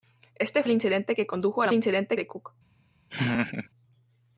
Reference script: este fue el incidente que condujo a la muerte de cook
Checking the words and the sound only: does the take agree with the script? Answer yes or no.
no